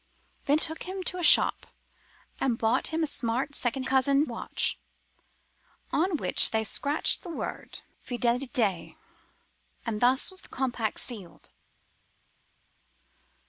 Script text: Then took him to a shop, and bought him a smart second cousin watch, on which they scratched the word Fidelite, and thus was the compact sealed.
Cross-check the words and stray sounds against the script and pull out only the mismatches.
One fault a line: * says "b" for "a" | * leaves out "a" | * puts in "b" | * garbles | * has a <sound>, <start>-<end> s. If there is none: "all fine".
all fine